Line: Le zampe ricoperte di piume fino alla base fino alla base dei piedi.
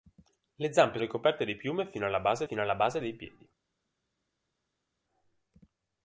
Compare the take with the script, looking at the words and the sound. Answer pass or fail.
pass